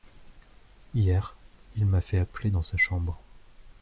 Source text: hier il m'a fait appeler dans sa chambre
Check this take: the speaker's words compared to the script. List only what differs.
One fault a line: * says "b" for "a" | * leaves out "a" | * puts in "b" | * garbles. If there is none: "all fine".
all fine